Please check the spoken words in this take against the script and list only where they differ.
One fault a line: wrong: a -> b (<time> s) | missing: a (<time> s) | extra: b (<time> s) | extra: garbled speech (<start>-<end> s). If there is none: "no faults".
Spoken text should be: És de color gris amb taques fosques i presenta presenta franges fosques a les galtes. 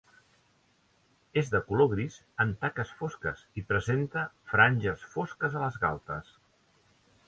missing: presenta (4.3 s)